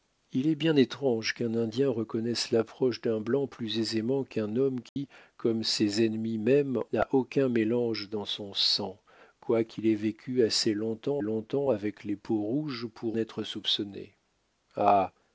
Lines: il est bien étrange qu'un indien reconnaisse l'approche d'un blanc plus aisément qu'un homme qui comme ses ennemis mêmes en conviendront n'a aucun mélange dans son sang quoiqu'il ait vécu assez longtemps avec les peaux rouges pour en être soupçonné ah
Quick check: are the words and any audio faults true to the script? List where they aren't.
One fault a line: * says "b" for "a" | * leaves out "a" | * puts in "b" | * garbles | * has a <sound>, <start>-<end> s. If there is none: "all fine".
* has a dropout, 4.9-5.0 s
* leaves out "en conviendront"
* puts in "longtemps"
* leaves out "en"